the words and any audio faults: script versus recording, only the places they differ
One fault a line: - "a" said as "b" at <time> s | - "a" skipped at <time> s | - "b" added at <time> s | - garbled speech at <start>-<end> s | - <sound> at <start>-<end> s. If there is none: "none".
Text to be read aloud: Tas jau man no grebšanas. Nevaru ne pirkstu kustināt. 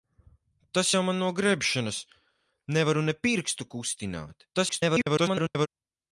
- garbled speech at 4.5-5.7 s